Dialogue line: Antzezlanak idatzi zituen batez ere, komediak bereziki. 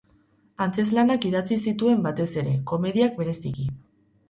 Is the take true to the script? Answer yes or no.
yes